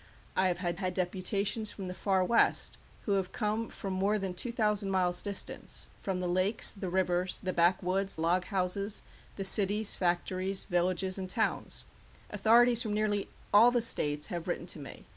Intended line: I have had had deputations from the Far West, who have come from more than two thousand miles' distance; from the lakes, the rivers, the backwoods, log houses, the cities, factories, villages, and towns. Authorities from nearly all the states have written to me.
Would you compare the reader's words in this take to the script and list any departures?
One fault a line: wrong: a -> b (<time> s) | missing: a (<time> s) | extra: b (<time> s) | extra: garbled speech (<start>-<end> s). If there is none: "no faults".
no faults